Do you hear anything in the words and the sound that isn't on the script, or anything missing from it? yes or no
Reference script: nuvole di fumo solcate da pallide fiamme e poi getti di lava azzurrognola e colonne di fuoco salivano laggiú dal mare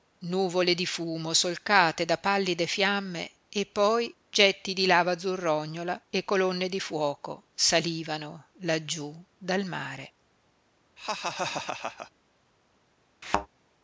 yes